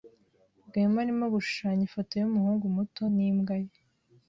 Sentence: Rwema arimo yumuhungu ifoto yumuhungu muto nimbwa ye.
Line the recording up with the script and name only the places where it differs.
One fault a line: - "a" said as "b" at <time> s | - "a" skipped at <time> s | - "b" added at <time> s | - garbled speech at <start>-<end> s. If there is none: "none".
- "yumuhungu" said as "gushushanya" at 1.4 s